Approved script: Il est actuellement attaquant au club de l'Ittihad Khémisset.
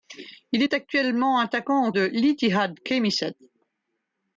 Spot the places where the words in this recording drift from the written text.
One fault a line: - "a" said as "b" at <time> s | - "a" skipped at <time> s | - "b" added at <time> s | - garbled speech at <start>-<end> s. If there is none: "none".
- "club" skipped at 1.9 s